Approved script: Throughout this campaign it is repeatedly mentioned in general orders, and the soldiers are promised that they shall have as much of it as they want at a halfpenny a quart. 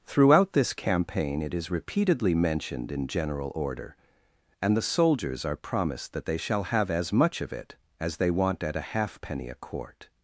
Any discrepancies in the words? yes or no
yes